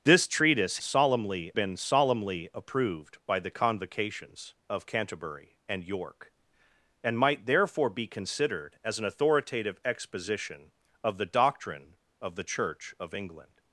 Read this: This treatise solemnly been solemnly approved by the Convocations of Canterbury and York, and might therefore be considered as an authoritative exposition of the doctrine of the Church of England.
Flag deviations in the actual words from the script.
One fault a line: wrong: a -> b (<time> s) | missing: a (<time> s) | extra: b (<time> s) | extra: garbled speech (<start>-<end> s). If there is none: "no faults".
no faults